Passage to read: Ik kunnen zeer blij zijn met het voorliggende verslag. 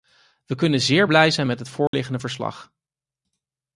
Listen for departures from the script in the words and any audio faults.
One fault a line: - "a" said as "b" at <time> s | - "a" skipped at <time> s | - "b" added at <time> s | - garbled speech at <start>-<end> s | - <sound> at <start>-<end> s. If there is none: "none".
- "Ik" said as "We" at 0.5 s
- dropout at 1.9-1.9 s